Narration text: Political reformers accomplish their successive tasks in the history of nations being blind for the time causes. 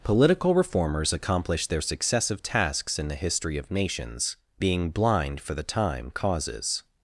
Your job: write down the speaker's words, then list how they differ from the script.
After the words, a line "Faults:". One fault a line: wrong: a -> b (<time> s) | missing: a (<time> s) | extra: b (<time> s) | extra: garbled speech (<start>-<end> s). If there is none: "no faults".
Political reformers accomplish their successive tasks in the history of nations being blind for the time causes.
Faults:
no faults